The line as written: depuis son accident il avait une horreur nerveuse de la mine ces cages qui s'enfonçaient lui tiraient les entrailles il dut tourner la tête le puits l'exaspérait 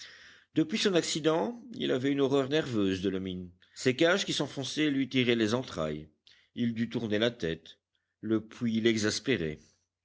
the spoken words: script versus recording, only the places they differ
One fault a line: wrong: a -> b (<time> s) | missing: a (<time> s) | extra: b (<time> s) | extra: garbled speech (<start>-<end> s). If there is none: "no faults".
no faults